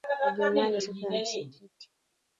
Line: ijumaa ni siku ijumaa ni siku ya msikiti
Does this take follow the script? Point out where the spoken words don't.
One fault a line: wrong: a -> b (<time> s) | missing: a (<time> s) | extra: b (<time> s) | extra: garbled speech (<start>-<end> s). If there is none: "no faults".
missing: ijumaa ni siku (1.0 s)